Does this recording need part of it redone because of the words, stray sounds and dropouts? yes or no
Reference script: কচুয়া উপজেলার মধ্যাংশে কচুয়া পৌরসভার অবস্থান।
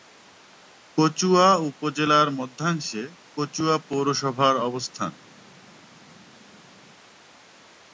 no